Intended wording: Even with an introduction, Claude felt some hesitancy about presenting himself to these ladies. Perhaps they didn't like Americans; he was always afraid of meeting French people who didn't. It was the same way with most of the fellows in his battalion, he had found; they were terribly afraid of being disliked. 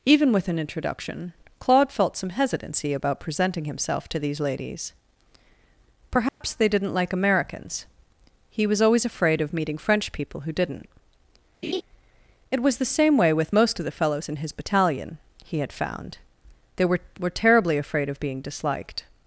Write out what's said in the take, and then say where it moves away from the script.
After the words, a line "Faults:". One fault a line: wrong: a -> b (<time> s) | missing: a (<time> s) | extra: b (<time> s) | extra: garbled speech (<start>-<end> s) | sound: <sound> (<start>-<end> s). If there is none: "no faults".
Even with an introduction, Claude felt some hesitancy about presenting himself to these ladies. Perhaps they didn't like Americans; he was always afraid of meeting French people who didn't. It was the same way with most of the fellows in his battalion, he had found; they were were terribly afraid of being disliked.
Faults:
sound: dropout (6.3-6.4 s)
sound: laugh (11.6-11.8 s)
extra: were (17.2 s)